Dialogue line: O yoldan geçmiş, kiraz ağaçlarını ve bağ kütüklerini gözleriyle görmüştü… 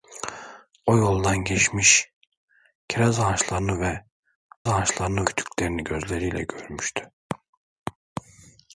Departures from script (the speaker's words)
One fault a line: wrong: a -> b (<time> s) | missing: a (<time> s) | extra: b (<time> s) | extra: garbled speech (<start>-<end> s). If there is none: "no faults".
wrong: bağ -> ağaçlarını (4.7 s)